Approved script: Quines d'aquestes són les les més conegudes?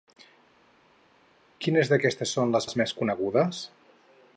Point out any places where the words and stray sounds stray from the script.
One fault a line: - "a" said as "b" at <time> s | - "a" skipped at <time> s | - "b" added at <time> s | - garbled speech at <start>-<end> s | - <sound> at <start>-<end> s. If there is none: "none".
none